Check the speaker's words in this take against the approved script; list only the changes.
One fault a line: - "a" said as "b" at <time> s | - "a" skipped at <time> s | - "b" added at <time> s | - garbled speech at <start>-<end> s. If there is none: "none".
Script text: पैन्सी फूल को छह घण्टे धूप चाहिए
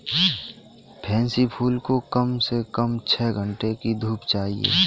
- "कम से कम" added at 2.1 s
- "की" added at 3.7 s